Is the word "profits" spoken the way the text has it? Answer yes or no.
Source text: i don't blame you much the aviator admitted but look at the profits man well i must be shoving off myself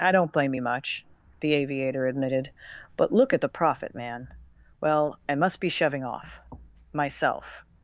no